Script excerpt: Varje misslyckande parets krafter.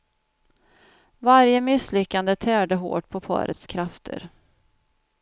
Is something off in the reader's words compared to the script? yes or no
yes